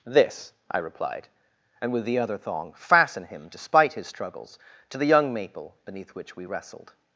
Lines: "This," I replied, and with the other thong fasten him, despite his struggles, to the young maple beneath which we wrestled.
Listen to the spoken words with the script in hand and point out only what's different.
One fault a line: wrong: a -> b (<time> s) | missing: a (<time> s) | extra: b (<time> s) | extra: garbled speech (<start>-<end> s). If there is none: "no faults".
no faults